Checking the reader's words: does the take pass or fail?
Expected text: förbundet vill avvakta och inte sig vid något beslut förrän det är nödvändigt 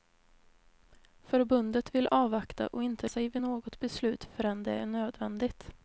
pass